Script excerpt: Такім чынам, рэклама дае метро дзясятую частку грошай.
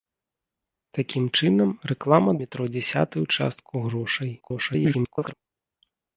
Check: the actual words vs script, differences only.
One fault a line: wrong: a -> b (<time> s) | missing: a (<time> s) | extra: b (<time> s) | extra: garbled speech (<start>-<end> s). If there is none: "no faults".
missing: дае (2.3 s)
extra: garbled speech (4.4-5.3 s)